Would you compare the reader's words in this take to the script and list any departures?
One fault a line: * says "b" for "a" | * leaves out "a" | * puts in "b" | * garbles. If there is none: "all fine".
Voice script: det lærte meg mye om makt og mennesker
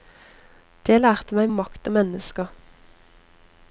* leaves out "mye"